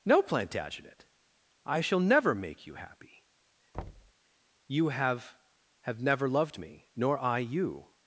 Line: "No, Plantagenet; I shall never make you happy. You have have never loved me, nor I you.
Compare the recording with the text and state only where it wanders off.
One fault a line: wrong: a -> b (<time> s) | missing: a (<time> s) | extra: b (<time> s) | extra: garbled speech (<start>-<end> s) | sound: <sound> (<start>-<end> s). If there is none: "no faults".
sound: thud (3.7-4.1 s)